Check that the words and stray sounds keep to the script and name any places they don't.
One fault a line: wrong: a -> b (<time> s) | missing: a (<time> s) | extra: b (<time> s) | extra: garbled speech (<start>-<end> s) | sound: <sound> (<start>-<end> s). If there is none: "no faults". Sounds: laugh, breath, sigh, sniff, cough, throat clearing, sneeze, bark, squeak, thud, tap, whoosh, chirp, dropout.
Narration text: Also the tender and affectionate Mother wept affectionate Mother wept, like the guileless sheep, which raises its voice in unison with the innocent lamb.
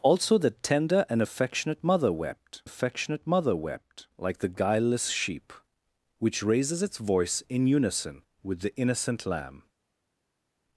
no faults